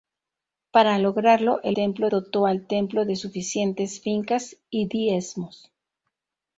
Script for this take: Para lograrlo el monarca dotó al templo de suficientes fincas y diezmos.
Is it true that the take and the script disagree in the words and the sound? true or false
true